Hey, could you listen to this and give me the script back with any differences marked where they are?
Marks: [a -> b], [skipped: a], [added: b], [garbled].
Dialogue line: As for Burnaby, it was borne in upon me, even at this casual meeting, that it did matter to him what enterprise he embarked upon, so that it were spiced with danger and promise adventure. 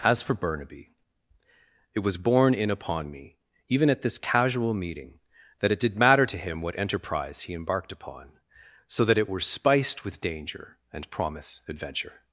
As for Burnaby, it was borne in upon me, even at this casual meeting, that it did matter to him what enterprise he embarked upon, so that it were spiced with danger and promise adventure.